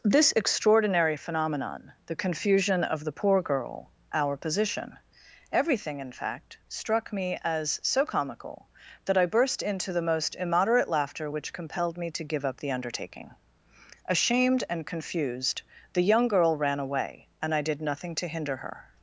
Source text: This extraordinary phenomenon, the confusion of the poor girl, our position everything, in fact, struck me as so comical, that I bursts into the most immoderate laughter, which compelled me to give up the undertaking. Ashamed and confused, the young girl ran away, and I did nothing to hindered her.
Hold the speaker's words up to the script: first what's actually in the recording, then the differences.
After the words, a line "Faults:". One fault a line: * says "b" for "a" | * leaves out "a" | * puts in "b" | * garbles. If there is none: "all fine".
This extraordinary phenomenon, the confusion of the poor girl, our position everything, in fact, struck me as so comical, that I burst into the most immoderate laughter, which compelled me to give up the undertaking. Ashamed and confused, the young girl ran away, and I did nothing to hinder her.
Faults:
* says "burst" for "bursts"
* says "hinder" for "hindered"